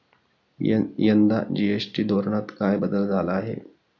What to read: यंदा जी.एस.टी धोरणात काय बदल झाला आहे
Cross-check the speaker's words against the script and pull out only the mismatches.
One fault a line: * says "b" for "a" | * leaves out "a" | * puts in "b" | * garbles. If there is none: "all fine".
all fine